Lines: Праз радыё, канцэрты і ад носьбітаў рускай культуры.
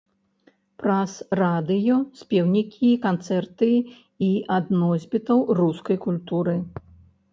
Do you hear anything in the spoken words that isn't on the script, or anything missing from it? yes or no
yes